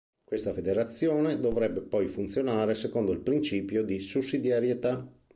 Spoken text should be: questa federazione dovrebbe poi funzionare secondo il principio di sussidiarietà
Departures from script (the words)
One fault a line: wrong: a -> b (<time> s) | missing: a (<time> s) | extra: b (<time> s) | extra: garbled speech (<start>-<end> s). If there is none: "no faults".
no faults